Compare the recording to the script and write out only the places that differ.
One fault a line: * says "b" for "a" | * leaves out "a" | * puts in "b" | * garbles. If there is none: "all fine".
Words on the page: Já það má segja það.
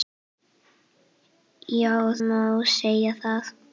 * leaves out "það"